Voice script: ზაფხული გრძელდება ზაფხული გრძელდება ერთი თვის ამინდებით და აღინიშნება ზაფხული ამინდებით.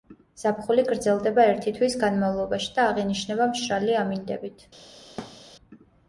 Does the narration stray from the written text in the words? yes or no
yes